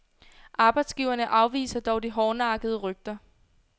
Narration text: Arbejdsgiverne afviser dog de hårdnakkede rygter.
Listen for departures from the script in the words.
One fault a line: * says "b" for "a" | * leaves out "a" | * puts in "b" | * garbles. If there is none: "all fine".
all fine